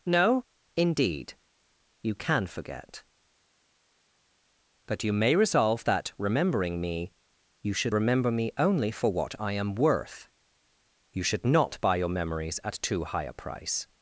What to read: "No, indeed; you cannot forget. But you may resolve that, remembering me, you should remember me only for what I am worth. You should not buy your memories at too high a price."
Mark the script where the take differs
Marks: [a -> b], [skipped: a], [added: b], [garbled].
"No, indeed; you [cannot -> can] forget. But you may resolve that, remembering me, you should remember me only for what I am worth. You should not buy your memories at too high a price."